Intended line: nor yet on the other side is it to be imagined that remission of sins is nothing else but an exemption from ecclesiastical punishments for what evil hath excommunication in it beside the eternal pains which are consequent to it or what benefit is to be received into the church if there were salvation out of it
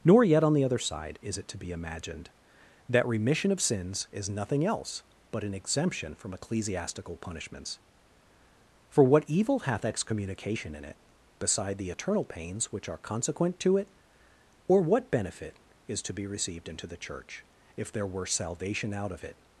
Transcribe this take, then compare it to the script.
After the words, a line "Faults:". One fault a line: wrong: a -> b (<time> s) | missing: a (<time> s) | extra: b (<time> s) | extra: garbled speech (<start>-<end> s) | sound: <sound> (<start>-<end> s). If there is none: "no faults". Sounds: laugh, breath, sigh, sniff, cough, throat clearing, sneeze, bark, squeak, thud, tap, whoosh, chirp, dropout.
nor yet on the other side is it to be imagined that remission of sins is nothing else but an exemption from ecclesiastical punishments for what evil hath excommunication in it beside the eternal pains which are consequent to it or what benefit is to be received into the church if there were salvation out of it
Faults:
no faults